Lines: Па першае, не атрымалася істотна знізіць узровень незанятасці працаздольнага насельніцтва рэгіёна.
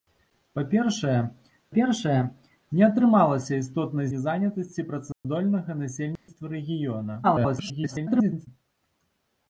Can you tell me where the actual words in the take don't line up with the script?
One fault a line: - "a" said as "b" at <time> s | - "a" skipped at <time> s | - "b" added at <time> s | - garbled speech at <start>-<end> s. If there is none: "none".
- "першае" added at 1.7 s
- "знізіць узровень" skipped at 4.1 s
- garbled speech at 7.2-8.5 s